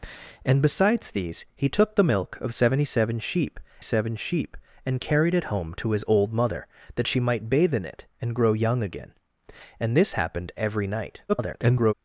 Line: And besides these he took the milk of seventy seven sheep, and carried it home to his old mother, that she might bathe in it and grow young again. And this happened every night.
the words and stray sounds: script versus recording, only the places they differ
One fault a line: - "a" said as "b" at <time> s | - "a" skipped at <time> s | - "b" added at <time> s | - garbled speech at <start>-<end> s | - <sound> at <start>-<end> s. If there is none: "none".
- "seven sheep" added at 3.8 s
- garbled speech at 11.3-11.9 s